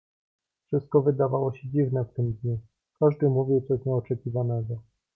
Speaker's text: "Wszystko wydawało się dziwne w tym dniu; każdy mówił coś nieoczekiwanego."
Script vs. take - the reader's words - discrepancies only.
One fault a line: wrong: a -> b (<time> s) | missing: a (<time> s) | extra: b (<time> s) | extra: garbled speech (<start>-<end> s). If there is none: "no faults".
no faults